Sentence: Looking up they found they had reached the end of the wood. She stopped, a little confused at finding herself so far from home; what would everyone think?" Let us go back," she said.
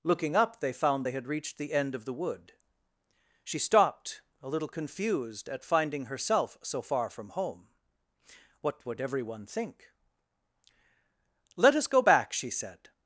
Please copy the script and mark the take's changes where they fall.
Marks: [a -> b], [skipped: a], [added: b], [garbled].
Looking up they found they had reached the end of the wood. She stopped, a little confused at finding herself so far from home; what would everyone think?" Let us go back," she said.